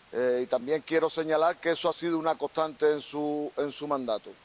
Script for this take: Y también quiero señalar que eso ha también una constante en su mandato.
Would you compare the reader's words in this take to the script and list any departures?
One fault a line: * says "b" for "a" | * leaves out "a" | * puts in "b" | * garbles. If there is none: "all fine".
* says "sido" for "también"